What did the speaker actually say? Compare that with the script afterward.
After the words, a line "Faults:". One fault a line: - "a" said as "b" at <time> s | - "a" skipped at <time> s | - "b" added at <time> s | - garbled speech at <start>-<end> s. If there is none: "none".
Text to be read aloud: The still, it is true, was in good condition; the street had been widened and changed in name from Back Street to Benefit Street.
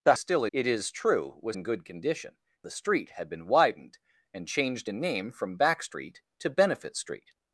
The still, it is true, was in good condition; the street had been widened and changed in name from Back Street to Benefit Street.
Faults:
none